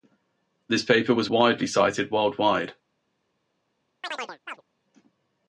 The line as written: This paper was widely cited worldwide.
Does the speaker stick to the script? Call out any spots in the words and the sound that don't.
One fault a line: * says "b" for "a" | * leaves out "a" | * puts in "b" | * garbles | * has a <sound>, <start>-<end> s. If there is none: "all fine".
* has a chirp, 4.0-4.6 s